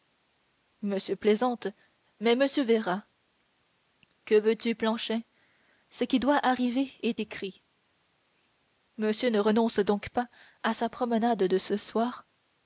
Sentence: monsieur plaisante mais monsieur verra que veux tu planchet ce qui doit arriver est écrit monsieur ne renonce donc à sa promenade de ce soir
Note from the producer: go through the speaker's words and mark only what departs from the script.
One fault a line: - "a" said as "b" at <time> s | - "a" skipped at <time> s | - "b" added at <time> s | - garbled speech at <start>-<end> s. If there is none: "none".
- "pas" added at 10.1 s